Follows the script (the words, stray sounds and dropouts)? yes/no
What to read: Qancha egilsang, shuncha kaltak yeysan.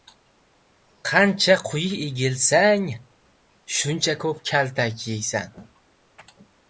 no